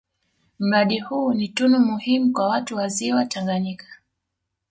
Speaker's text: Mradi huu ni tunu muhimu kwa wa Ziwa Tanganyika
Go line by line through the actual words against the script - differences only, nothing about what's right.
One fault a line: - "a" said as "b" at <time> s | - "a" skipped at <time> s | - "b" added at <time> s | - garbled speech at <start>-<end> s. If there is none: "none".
- "watu" added at 2.5 s